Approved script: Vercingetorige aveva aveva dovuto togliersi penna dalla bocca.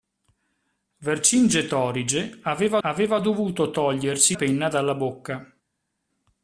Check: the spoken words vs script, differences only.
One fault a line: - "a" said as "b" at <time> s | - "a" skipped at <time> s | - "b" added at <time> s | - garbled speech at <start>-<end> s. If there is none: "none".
none